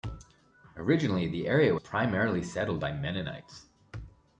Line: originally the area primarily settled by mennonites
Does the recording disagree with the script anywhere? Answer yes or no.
no